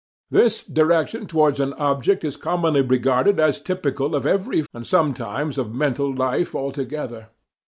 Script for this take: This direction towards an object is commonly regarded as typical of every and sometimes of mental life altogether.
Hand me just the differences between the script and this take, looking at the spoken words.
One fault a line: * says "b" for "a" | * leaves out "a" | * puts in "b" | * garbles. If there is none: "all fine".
all fine